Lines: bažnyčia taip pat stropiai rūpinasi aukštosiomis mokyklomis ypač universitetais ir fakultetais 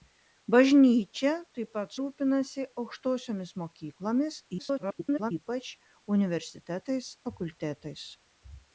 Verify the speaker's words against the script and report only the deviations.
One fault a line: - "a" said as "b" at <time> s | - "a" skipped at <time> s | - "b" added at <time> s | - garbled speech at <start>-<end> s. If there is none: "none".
- "stropiai" skipped at 1.9 s
- garbled speech at 4.6-5.3 s
- "ir" skipped at 7.1 s